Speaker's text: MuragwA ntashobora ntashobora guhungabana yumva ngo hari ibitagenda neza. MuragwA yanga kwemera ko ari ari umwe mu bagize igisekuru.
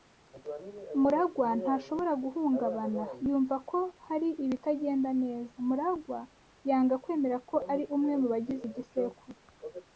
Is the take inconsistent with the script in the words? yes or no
yes